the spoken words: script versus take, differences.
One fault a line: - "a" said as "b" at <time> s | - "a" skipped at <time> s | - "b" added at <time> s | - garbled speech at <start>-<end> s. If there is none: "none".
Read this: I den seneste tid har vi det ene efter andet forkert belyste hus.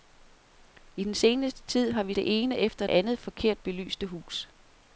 none